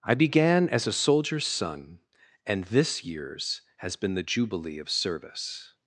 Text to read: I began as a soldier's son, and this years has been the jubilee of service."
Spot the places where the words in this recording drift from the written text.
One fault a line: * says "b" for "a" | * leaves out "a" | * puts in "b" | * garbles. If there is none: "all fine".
all fine